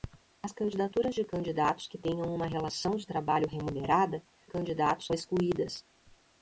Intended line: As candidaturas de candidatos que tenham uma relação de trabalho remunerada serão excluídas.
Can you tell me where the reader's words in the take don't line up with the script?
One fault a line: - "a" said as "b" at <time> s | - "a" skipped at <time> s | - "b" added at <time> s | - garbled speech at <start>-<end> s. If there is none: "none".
- "serão" said as "candidatos" at 4.4 s